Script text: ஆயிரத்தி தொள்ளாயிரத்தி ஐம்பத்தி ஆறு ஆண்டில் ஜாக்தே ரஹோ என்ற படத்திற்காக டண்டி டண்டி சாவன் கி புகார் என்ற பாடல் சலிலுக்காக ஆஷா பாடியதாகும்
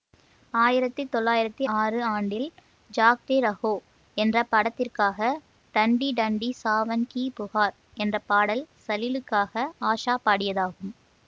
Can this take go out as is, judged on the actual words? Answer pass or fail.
fail